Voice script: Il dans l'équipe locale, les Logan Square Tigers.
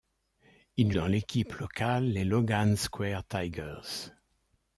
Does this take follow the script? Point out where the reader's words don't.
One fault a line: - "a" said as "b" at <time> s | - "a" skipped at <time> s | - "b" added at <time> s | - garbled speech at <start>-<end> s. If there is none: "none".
none